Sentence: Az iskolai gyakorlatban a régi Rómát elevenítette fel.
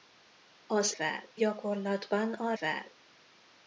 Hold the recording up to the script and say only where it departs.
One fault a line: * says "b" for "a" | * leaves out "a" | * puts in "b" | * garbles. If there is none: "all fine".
* says "fel" for "iskolai"
* leaves out "régi Rómát elevenítette"